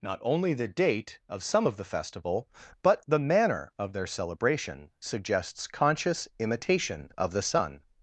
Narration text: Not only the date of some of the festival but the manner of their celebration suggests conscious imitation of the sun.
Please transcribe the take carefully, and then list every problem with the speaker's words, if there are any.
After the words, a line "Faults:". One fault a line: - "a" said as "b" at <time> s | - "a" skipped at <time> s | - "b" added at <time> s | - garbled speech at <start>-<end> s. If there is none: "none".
Not only the date of some of the festival but the manner of their celebration suggests conscious imitation of the sun.
Faults:
none